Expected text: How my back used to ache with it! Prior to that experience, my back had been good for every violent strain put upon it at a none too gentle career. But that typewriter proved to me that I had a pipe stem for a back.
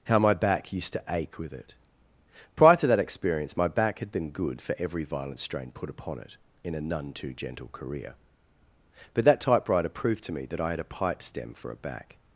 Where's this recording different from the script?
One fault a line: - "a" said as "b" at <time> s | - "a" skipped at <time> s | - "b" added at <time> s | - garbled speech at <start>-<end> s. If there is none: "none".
- "at" said as "in" at 6.6 s